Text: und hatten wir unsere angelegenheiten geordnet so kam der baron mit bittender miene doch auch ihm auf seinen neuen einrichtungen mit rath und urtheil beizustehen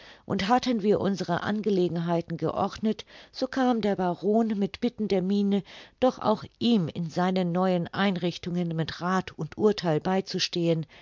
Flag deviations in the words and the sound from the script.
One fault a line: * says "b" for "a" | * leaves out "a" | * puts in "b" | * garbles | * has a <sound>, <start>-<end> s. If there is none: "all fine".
* says "in" for "auf"